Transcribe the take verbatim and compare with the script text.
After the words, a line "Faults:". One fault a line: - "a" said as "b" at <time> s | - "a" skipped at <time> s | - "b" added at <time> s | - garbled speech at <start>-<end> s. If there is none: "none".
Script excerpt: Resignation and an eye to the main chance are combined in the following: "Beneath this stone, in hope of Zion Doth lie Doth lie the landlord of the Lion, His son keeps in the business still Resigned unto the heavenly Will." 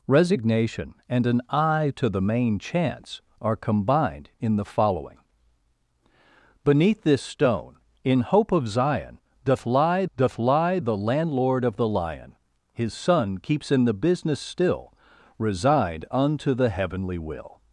Resignation and an eye to the main chance are combined in the following: "Beneath this stone, in hope of Zion Doth lie Doth lie the landlord of the Lion, His son keeps in the business still Resigned unto the heavenly Will."
Faults:
none